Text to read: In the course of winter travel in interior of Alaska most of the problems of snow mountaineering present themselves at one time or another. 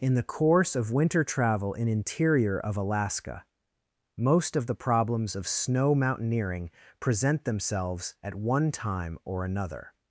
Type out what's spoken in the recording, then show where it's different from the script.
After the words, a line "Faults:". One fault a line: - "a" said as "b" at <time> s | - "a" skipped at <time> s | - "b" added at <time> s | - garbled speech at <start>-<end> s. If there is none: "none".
In the course of winter travel in interior of Alaska most of the problems of snow mountaineering present themselves at one time or another.
Faults:
none